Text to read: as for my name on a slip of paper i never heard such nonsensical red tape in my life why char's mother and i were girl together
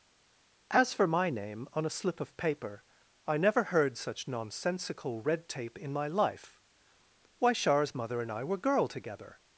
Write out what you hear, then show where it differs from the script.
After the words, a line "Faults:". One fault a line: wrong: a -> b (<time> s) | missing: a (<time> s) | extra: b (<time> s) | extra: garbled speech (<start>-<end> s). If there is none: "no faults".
as for my name on a slip of paper i never heard such nonsensical red tape in my life why char's mother and i were girl together
Faults:
no faults